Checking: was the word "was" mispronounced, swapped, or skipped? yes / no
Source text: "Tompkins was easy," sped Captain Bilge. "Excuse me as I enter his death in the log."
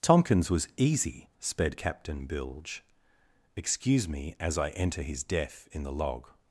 no